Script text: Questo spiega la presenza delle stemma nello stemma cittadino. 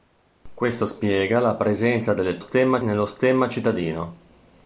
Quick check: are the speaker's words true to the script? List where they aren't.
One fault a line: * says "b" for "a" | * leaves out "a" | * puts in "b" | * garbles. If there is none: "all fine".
all fine